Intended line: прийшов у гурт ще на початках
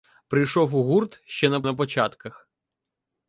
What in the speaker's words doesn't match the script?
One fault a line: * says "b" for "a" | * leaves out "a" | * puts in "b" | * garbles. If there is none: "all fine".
* puts in "на"